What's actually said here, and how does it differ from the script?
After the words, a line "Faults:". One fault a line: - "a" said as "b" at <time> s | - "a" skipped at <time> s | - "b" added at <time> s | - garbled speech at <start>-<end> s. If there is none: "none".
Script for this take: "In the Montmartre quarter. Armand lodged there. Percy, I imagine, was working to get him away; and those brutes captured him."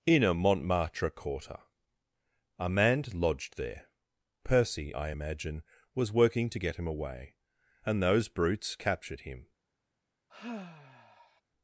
"In a Montmartre quarter. Armand lodged there. Percy, I imagine, was working to get him away; and those brutes captured him."
Faults:
- "the" said as "a" at 0.2 s